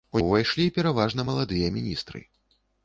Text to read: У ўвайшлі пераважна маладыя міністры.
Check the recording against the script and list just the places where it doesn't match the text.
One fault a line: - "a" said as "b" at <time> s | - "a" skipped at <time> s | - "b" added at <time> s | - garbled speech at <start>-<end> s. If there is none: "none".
none